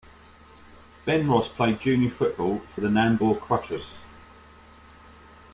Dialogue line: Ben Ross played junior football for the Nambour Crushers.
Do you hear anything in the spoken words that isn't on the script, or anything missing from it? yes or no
no